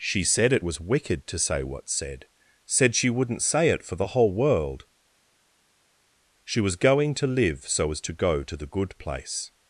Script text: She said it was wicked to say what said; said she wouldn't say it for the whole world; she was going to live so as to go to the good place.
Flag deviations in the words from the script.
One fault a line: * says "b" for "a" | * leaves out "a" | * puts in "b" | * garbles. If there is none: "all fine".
all fine